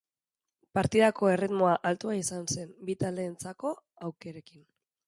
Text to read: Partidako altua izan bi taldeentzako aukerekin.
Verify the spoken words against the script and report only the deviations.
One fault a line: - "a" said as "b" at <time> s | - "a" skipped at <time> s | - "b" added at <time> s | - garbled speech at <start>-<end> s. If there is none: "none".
- "erritmoa" added at 1.3 s
- "zen" added at 2.6 s